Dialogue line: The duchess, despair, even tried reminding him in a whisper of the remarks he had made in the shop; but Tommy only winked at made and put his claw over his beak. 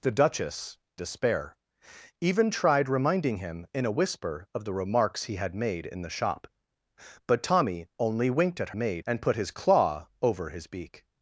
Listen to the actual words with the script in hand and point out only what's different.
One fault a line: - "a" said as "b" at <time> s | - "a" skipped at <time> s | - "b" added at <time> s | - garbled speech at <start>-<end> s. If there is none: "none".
none